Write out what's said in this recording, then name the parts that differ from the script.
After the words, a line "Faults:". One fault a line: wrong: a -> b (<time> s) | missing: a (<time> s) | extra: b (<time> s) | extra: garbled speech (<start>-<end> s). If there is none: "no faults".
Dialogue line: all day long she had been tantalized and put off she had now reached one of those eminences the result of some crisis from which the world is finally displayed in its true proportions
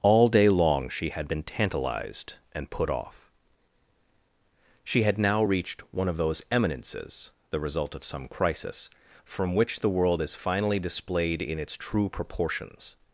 all day long she had been tantalized and put off she had now reached one of those eminences the result of some crisis from which the world is finally displayed in its true proportions
Faults:
no faults